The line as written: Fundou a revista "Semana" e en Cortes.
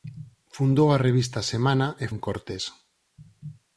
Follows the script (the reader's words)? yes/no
yes